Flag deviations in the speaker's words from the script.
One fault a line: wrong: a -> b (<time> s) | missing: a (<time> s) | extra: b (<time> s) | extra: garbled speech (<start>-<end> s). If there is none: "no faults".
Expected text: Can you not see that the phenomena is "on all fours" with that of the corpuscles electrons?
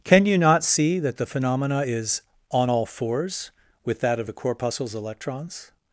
no faults